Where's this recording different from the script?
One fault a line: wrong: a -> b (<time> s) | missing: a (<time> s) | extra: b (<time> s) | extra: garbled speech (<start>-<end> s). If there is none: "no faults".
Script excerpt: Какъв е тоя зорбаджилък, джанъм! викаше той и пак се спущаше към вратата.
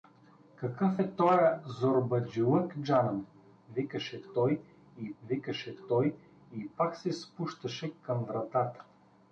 extra: викаше той и (5.2 s)